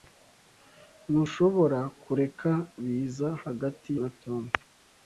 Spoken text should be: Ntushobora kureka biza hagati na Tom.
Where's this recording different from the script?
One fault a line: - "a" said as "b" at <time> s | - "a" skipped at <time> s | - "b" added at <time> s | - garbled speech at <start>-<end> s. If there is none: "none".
none